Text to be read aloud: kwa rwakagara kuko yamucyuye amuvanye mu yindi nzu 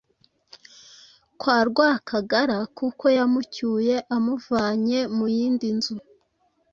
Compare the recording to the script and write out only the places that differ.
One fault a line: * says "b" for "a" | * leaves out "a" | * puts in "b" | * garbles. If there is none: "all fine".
all fine